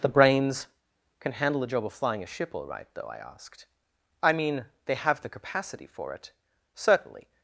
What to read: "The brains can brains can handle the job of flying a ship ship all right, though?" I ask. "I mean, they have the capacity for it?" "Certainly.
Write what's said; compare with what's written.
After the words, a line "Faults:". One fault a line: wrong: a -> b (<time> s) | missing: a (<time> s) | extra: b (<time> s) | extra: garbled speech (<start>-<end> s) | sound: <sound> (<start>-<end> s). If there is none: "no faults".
"The brains can handle the job of flying a ship all right, though?" I asked. "I mean, they have the capacity for it?" "Certainly.
Faults:
missing: brains can (1.3 s)
missing: ship (2.5 s)
wrong: ask -> asked (3.2 s)